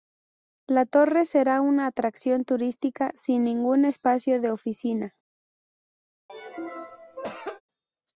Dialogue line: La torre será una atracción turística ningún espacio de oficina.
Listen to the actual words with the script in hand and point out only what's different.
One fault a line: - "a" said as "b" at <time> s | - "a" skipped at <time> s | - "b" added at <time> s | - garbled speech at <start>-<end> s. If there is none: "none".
- "sin" added at 3.1 s